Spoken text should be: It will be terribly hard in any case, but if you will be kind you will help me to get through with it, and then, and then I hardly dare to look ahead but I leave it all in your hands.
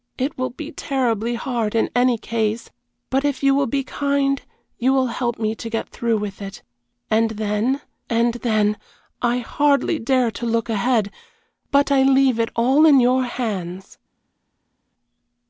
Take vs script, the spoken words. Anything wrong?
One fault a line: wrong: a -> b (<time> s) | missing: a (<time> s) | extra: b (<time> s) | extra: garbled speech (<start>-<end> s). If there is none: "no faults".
no faults